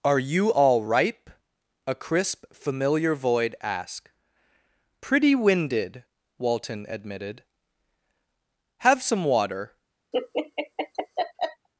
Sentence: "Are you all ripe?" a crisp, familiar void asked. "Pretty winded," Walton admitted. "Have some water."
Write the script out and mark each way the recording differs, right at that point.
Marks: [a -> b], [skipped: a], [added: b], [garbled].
"Are you all ripe?" a crisp, familiar void asked. "Pretty winded," Walton admitted. "Have some water."